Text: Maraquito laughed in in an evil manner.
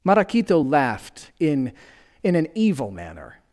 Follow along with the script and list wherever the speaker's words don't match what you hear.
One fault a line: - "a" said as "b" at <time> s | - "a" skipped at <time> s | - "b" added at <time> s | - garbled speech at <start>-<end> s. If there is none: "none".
none